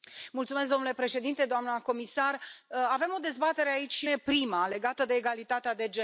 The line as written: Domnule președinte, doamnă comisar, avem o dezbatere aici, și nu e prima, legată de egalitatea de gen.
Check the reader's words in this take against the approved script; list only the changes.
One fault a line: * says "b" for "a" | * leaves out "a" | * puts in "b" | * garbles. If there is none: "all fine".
* leaves out "nu"